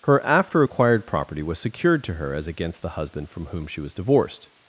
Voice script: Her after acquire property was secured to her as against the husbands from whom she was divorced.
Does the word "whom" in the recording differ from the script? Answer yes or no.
no